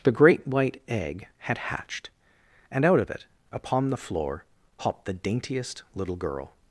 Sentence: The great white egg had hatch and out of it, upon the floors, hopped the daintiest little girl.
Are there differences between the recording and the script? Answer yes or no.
yes